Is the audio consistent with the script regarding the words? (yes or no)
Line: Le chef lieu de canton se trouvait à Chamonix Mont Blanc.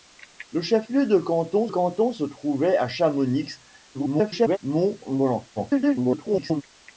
no